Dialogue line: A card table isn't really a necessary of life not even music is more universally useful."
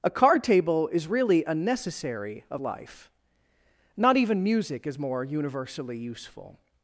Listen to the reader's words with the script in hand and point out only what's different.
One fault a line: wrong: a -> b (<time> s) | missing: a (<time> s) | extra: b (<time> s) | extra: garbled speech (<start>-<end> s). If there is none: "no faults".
wrong: isn't -> is (0.9 s)